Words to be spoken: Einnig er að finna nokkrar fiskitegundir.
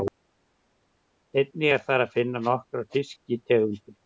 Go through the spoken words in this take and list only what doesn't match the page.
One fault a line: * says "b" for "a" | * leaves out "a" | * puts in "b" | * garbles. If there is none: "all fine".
* puts in "þar"